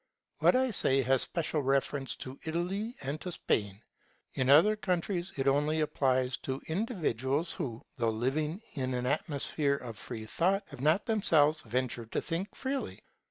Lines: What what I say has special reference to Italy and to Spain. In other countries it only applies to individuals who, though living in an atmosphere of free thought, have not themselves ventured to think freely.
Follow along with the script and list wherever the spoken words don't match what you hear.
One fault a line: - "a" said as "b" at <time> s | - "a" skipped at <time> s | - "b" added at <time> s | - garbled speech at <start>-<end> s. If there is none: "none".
- "what" skipped at 0.6 s